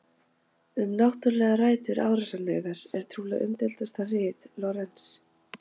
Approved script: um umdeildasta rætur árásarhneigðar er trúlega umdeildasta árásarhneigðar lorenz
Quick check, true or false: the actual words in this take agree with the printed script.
false